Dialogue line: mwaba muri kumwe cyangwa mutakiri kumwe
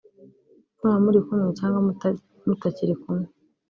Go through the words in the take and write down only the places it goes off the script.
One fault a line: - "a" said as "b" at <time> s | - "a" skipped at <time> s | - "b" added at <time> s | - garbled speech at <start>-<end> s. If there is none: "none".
none